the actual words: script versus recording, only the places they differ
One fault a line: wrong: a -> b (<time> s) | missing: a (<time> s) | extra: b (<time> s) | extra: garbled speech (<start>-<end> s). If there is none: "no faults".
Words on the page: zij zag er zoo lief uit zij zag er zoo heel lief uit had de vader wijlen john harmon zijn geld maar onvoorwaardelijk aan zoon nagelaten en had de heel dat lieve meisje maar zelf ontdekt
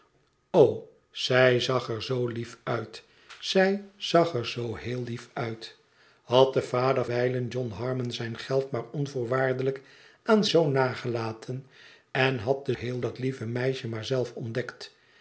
no faults